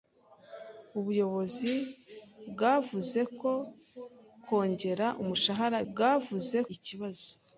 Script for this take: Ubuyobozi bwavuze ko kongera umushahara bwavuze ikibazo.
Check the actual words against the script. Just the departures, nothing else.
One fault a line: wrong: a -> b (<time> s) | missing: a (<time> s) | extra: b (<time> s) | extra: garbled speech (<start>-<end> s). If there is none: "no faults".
no faults